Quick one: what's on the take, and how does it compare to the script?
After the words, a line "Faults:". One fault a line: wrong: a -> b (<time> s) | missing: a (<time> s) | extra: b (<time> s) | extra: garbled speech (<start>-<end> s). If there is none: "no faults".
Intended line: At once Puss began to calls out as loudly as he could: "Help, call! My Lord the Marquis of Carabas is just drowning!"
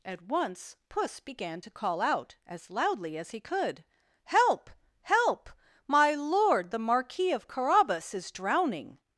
At once Puss began to call out as loudly as he could: "Help, help! My Lord the Marquis of Carabas is drowning!"
Faults:
wrong: calls -> call (1.7 s)
wrong: call -> help (5.0 s)
missing: just (8.3 s)